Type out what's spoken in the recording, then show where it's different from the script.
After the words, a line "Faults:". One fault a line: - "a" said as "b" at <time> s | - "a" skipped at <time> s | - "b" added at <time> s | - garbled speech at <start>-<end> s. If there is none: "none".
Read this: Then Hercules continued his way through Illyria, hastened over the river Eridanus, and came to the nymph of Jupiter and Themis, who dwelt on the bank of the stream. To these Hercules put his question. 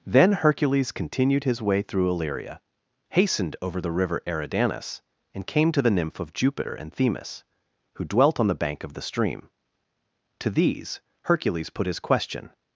Then Hercules continued his way through Illyria, hastened over the river Eridanus, and came to the nymph of Jupiter and Themis, who dwelt on the bank of the stream. To these Hercules put his question.
Faults:
none